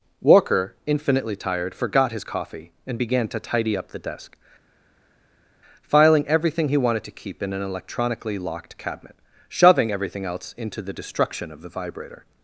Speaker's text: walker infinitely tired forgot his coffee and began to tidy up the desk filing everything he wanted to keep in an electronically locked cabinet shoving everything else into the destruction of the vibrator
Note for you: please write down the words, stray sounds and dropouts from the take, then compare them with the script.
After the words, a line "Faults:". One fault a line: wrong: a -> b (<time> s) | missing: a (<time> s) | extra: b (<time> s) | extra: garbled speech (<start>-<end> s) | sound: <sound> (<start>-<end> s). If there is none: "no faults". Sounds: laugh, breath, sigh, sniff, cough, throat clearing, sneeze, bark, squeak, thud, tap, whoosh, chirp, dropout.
walker infinitely tired forgot his coffee and began to tidy up the desk filing everything he wanted to keep in an electronically locked cabinet shoving everything else into the destruction of the vibrator
Faults:
no faults